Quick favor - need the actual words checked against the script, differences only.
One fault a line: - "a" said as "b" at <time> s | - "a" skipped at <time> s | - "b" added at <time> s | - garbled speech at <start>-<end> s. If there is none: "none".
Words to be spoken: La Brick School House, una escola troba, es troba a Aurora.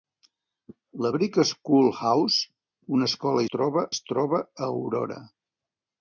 none